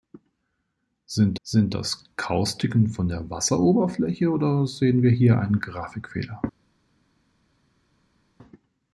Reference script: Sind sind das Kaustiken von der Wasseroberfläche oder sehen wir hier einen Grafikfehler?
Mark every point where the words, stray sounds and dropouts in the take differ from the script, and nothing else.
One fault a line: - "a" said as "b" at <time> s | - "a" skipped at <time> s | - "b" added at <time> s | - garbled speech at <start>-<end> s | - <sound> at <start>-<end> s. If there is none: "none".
none